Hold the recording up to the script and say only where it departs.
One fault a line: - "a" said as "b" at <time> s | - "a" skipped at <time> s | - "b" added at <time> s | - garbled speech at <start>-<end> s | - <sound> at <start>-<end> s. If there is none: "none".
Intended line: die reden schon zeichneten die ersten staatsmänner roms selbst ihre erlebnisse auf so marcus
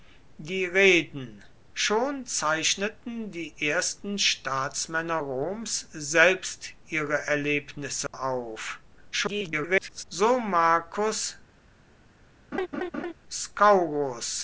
- dropout at 8.1-8.1 s
- garbled speech at 9.1-10.0 s
- laugh at 12.5-13.1 s